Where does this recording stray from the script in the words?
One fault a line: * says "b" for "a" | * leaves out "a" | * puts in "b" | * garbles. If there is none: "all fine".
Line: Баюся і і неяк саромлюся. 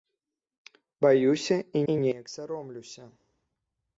all fine